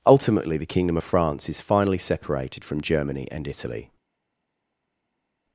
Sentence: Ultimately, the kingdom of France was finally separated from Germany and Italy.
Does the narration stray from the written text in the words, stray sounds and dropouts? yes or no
yes